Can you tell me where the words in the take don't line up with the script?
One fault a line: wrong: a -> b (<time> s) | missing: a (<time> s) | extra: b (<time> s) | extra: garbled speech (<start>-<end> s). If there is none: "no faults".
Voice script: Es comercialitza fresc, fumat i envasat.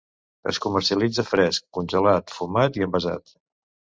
extra: congelat (1.8 s)